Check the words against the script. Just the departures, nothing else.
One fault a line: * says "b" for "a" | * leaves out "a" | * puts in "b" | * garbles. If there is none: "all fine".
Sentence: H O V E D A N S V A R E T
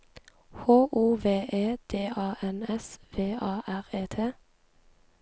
all fine